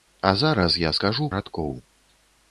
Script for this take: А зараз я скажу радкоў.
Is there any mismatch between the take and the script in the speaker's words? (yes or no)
no